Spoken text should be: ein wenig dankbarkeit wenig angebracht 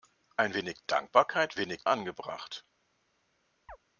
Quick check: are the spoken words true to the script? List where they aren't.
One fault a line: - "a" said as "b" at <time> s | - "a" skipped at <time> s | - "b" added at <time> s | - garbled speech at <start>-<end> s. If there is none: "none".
none